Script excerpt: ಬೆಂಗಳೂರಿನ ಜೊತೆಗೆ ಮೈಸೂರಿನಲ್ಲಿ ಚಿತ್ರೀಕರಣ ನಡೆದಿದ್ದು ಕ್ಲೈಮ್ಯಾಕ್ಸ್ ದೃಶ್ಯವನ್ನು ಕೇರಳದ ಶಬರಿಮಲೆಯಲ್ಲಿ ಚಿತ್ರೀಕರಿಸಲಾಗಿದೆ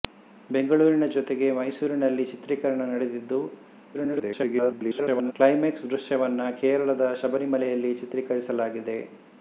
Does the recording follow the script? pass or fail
fail